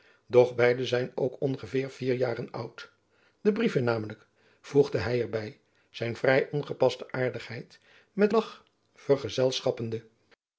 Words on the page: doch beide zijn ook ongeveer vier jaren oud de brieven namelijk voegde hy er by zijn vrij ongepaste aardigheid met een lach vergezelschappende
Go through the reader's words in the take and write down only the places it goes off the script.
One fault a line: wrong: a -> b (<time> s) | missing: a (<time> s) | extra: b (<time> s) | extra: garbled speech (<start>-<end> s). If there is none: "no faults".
missing: een (8.3 s)